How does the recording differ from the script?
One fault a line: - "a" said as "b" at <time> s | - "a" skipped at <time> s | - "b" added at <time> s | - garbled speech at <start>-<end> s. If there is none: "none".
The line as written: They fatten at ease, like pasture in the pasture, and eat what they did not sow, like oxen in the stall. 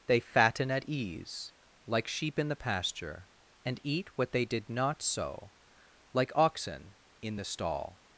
- "pasture" said as "sheep" at 2.1 s